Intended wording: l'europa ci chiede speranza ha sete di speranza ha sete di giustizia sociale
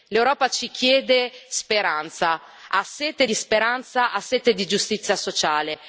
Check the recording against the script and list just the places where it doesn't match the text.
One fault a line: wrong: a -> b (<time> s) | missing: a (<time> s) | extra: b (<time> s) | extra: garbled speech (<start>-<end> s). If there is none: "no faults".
no faults